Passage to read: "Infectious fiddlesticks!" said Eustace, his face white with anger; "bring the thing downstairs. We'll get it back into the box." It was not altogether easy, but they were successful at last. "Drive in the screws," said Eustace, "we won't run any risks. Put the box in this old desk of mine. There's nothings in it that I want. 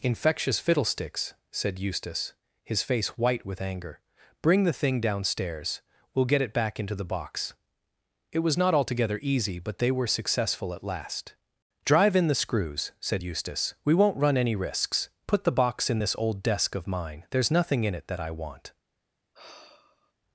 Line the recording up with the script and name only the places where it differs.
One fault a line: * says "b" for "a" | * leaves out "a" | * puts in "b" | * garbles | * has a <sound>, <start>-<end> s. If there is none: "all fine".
* says "nothing" for "nothings"
* has a sigh, 19.3-20.1 s